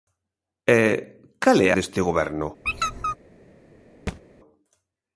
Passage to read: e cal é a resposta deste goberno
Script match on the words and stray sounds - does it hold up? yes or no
no